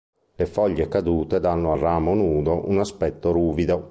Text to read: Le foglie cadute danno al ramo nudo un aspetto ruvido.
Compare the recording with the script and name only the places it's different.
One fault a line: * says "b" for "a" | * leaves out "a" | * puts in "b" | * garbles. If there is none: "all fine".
all fine